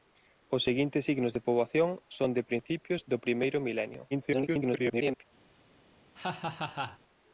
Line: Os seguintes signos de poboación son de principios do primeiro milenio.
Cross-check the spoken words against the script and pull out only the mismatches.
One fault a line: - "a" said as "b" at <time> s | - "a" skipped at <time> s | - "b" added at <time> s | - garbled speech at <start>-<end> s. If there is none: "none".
- garbled speech at 4.1-5.2 s